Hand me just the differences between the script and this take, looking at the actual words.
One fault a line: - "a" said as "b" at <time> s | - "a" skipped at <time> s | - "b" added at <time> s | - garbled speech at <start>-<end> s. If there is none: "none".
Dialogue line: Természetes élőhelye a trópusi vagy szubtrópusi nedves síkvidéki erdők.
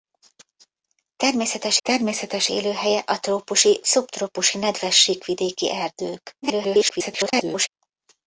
- "természetes" added at 1.8 s
- "vagy" skipped at 3.8 s
- garbled speech at 6.4-7.7 s